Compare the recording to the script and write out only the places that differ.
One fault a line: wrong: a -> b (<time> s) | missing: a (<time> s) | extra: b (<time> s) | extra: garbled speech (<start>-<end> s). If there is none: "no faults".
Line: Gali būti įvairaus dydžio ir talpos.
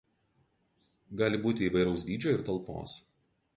no faults